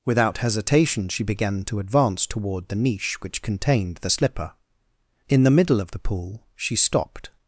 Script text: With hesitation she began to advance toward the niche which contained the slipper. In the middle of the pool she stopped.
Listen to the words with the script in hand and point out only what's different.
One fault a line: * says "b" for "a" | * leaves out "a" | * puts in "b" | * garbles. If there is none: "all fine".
* says "Without" for "With"